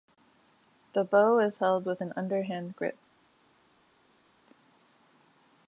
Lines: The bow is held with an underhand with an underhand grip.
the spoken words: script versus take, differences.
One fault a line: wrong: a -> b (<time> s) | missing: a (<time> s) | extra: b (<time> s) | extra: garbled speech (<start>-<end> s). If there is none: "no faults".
missing: with an underhand (2.8 s)